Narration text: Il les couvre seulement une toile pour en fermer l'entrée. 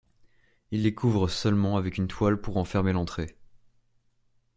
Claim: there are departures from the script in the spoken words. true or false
true